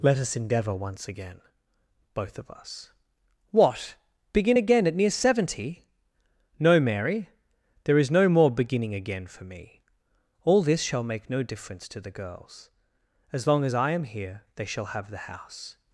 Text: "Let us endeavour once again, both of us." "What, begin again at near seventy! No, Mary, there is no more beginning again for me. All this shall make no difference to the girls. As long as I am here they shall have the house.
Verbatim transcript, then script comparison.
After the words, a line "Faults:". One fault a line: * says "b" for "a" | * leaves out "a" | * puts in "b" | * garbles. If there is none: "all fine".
"Let us endeavour once again, both of us." "What, begin again at near seventy! No, Mary, there is no more beginning again for me. All this shall make no difference to the girls. As long as I am here they shall have the house.
Faults:
all fine